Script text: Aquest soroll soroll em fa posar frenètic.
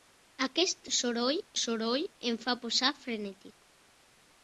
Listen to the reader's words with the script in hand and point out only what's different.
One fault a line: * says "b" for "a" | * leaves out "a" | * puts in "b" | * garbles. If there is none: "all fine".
all fine